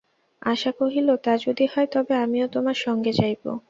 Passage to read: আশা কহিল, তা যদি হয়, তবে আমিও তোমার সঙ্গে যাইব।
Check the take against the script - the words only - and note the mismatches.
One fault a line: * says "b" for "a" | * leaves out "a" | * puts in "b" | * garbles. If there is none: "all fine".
all fine